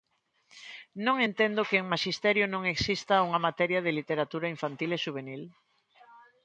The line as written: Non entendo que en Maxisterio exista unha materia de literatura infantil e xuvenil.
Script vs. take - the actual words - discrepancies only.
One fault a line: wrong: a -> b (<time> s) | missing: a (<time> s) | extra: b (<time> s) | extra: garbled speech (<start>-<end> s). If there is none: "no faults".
extra: non (2.5 s)